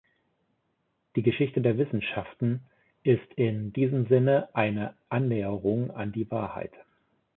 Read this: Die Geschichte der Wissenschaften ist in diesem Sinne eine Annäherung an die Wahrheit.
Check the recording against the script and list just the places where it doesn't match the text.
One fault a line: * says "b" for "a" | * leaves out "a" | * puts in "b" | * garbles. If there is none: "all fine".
all fine